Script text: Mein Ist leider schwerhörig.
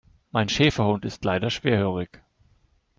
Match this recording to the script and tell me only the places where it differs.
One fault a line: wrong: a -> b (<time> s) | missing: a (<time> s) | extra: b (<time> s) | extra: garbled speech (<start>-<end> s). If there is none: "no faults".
extra: Schäferhund (0.5 s)